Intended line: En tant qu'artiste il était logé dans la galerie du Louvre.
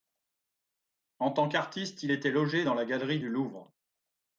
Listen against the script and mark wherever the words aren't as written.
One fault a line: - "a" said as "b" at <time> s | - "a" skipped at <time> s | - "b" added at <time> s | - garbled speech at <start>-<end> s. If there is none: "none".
none